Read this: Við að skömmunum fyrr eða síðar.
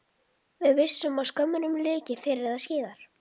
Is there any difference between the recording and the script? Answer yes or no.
yes